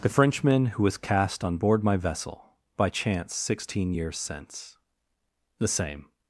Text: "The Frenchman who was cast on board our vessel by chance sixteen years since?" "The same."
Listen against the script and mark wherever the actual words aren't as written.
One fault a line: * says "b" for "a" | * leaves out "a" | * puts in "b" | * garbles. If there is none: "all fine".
* says "my" for "our"